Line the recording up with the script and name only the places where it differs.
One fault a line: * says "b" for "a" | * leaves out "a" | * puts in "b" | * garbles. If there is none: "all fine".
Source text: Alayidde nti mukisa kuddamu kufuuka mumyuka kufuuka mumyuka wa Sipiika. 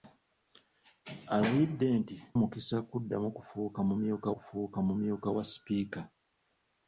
all fine